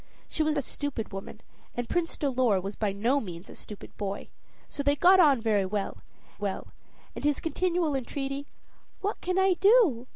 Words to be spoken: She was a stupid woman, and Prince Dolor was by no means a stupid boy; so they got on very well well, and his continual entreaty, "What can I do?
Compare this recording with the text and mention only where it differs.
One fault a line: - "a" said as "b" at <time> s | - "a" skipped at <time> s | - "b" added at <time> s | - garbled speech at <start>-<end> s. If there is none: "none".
none